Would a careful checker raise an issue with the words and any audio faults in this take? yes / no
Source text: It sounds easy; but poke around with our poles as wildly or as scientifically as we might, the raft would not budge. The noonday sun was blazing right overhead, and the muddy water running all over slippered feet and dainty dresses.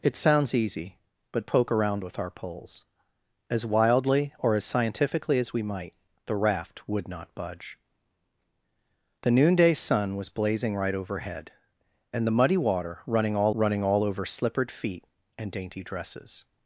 yes